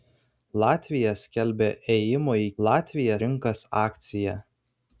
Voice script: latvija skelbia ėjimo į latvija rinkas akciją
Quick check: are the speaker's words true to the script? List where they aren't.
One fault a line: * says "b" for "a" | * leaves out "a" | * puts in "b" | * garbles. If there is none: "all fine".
all fine